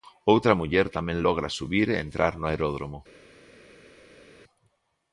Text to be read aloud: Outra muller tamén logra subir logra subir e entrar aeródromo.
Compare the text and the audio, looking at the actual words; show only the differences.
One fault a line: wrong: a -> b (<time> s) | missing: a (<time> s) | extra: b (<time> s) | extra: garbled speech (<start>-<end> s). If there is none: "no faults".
missing: logra subir (1.9 s)
extra: no (2.4 s)